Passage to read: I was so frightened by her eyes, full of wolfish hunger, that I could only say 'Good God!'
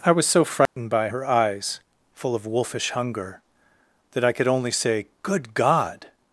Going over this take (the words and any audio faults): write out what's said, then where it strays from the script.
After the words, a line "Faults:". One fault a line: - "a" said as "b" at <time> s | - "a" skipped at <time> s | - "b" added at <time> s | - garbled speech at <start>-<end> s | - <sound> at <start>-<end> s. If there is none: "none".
I was so frightened by her eyes, full of wolfish hunger, that I could only say 'Good God!'
Faults:
- dropout at 0.7-0.8 s